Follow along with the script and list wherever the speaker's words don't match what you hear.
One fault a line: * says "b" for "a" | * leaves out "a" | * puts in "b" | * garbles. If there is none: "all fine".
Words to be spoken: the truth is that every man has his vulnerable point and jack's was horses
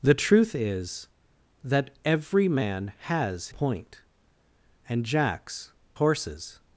* leaves out "his vulnerable"
* leaves out "was"